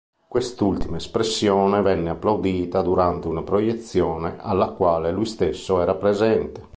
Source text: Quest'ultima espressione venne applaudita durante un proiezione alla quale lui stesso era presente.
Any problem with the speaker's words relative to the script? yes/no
yes